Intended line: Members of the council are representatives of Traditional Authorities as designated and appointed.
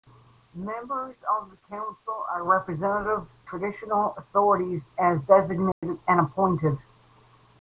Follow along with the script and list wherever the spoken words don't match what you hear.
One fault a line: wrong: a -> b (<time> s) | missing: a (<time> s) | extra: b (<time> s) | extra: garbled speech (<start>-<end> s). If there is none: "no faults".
missing: of (3.3 s)